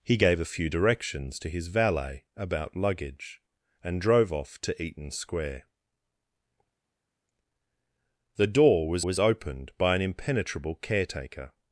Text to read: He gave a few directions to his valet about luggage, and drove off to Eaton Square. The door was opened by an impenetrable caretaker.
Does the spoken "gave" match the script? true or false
true